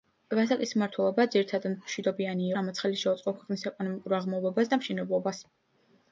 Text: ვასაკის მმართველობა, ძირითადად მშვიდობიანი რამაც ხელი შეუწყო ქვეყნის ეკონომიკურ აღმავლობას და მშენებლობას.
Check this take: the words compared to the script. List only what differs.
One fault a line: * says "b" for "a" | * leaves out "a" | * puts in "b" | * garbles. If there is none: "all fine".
all fine